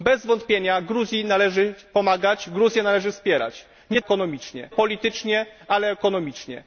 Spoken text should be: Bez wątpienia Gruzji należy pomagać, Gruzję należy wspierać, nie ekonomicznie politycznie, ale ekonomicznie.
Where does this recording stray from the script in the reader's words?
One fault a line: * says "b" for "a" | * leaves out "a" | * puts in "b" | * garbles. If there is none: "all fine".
all fine